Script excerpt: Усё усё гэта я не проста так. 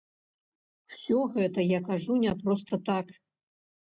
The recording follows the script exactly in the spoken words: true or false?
false